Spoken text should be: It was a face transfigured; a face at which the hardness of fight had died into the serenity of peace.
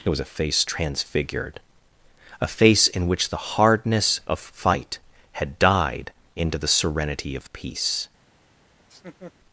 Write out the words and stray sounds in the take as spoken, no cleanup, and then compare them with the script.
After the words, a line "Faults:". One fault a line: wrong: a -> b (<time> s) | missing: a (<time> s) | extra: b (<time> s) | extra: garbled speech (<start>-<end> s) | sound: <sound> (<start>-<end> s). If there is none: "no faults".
It was a face transfigured; a face in which the hardness of fight had died into the serenity of peace.
Faults:
wrong: at -> in (2.9 s)
sound: laugh (8.8-9.3 s)